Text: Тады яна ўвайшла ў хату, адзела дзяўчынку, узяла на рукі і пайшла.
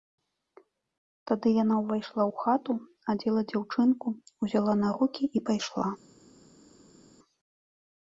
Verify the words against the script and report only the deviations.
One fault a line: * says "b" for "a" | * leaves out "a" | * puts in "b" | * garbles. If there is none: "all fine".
all fine